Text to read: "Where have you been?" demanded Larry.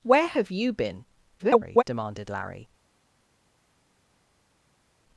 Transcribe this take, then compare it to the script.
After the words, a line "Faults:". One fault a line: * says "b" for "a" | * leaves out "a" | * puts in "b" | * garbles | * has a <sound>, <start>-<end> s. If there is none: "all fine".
"Where have you been?" [garbled] demanded Larry.
Faults:
* garbles